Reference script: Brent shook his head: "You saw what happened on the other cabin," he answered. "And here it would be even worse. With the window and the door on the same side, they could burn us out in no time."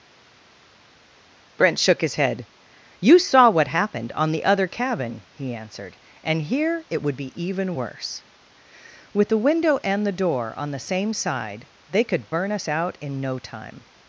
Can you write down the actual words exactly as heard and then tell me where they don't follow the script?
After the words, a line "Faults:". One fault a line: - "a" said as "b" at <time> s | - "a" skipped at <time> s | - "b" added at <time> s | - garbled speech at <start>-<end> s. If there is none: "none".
Brent shook his head: "You saw what happened on the other cabin," he answered. "And here it would be even worse. With the window and the door on the same side, they could burn us out in no time."
Faults:
none